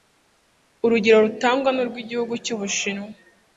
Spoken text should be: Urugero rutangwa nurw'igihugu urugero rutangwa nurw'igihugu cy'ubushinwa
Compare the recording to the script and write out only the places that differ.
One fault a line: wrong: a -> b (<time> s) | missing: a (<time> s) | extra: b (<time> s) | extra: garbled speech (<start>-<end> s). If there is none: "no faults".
missing: urugero rutangwa nurw'igihugu (2.3 s)